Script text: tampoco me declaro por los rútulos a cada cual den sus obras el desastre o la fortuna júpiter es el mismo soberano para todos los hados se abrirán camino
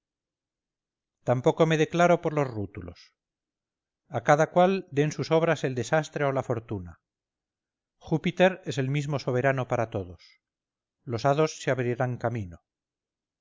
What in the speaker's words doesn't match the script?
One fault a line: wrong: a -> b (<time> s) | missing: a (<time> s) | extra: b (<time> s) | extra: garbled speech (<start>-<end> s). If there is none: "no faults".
no faults